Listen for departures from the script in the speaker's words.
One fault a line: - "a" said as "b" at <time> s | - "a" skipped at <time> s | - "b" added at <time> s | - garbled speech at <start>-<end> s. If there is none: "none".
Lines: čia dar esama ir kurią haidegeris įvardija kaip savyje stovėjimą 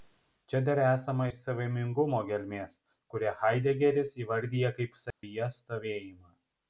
- "savaimingumo gelmės" added at 1.4 s